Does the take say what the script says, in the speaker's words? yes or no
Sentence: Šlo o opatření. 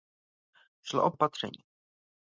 yes